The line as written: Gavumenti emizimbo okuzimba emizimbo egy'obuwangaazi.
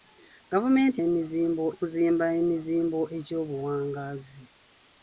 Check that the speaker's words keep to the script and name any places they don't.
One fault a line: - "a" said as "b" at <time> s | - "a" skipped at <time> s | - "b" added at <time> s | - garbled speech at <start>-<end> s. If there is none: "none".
none